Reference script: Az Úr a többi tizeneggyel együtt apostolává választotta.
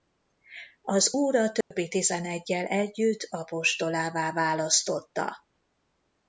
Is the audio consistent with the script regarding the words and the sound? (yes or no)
no